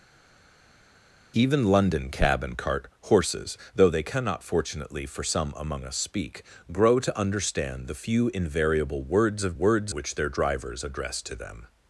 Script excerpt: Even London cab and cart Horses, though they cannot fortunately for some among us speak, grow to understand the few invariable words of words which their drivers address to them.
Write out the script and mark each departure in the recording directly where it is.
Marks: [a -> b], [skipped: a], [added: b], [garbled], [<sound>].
Even London cab and cart Horses, though they cannot fortunately for some among us speak, grow to understand the few invariable words of words which their drivers address to them.